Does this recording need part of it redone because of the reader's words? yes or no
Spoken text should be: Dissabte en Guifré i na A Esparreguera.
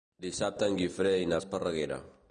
no